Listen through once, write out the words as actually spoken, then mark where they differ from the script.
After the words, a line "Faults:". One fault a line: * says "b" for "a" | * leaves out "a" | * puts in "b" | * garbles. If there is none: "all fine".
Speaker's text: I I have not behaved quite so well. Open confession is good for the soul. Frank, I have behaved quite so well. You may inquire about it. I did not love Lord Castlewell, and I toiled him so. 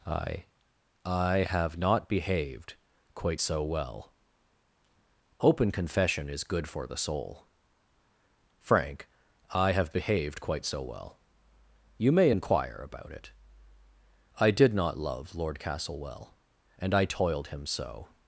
I I have not behaved quite so well. Open confession is good for the soul. Frank, I have behaved quite so well. You may inquire about it. I did not love Lord Castlewell, and I toiled him so.
Faults:
all fine